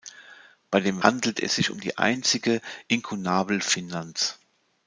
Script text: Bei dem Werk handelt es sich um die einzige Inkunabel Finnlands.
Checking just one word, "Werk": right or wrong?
wrong